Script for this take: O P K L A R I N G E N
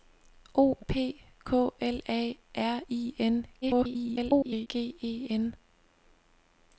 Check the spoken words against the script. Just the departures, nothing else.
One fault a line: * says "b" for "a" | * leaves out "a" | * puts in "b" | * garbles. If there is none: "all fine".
* garbles